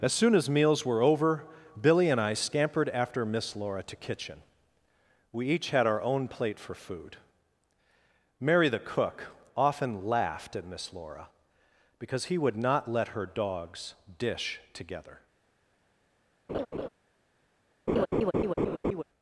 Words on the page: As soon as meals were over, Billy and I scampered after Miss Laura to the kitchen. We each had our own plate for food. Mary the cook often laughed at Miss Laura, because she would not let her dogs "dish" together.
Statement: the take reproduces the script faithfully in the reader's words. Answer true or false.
false